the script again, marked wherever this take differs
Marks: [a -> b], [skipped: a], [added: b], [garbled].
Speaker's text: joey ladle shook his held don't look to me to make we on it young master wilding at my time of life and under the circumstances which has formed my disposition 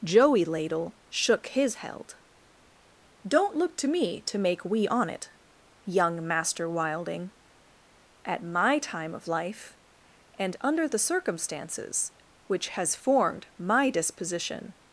joey ladle shook his held don't look to me to make we on it young master wilding at my time of life and under the circumstances which has formed my disposition